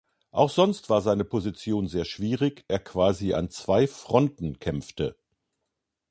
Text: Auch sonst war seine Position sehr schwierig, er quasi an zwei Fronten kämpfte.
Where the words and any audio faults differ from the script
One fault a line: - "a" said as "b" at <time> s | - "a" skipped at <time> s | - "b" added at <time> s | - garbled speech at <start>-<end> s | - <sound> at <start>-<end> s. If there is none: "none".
none